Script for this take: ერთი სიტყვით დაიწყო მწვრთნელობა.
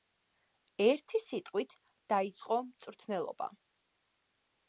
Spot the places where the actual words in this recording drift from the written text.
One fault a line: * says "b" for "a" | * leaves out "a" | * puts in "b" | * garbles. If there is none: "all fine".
all fine